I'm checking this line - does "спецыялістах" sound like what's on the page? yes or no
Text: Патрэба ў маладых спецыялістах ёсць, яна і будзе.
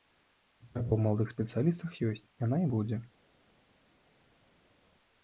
yes